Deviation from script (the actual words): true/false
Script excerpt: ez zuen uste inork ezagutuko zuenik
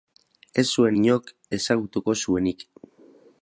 true